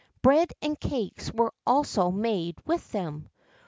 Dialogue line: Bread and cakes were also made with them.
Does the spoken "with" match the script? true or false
true